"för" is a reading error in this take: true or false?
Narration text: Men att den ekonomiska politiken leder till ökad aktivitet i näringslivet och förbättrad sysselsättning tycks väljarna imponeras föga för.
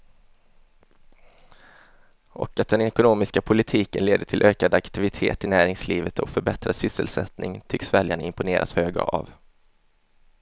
true